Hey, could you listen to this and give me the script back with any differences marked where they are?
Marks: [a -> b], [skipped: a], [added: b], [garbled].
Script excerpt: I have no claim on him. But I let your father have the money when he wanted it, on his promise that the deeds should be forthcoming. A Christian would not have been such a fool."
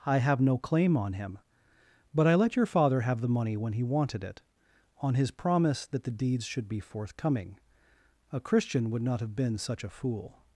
I have no claim on him. But I let your father have the money when he wanted it, on his promise that the deeds should be forthcoming. A Christian would not have been such a fool."